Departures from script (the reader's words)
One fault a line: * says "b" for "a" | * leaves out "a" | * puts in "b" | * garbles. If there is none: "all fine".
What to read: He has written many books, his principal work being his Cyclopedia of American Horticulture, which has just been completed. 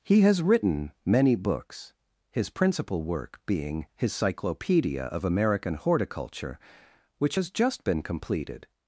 all fine